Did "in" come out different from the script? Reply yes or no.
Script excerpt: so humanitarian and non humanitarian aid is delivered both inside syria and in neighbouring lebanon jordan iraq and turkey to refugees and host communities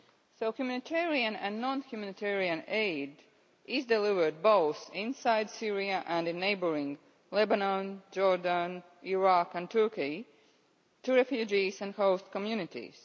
no